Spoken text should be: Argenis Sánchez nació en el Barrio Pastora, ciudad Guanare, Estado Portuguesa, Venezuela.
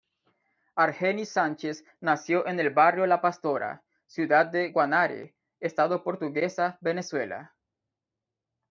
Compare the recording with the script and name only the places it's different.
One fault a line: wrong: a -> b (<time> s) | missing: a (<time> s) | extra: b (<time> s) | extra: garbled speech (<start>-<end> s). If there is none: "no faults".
extra: La (3.0 s)
extra: de (4.5 s)